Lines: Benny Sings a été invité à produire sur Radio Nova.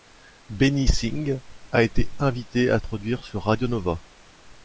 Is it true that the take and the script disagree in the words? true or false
false